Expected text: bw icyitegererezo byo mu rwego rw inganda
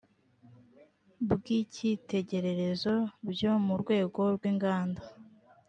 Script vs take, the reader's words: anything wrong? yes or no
no